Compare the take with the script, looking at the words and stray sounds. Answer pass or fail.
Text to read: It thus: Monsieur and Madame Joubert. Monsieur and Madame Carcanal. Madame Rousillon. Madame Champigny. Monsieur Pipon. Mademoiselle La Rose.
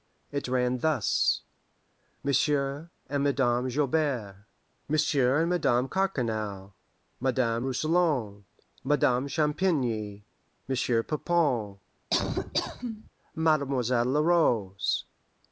fail